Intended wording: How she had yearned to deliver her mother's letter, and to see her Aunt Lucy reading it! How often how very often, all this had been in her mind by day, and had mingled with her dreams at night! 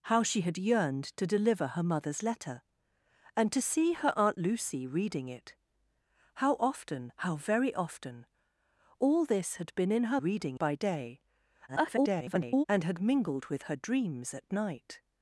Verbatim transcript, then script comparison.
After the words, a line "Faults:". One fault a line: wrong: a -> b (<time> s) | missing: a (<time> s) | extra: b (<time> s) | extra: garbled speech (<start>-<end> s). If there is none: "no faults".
How she had yearned to deliver her mother's letter, and to see her Aunt Lucy reading it! How often how very often, all this had been in her reading by day, [garbled] and had mingled with her dreams at night!
Faults:
wrong: mind -> reading (10.2 s)
extra: garbled speech (11.7-12.6 s)